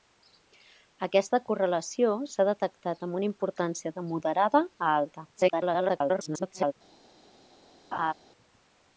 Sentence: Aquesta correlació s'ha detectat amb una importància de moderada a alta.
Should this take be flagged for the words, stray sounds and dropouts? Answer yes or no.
yes